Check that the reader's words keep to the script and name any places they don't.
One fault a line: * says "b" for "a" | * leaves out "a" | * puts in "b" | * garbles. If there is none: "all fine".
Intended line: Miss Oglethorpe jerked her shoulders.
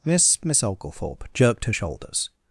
* puts in "miss"